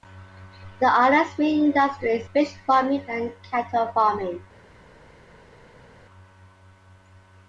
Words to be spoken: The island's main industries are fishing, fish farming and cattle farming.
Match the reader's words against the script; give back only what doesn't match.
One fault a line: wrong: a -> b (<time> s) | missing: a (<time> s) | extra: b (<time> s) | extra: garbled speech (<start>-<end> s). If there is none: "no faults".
missing: are fishing (2.3 s)